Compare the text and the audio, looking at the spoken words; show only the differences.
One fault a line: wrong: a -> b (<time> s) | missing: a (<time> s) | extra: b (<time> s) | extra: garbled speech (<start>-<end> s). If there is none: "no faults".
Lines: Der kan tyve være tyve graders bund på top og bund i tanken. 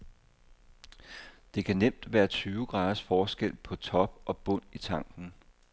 wrong: tyve -> nemt (1.7 s)
wrong: bund -> forskel (3.0 s)